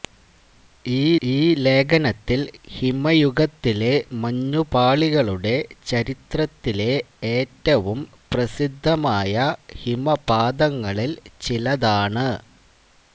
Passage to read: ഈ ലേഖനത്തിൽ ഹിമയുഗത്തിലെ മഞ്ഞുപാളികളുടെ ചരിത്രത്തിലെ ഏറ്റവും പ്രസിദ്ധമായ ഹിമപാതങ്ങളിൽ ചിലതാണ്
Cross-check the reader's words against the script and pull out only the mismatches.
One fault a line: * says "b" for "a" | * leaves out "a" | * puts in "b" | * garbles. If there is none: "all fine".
* puts in "ഈ"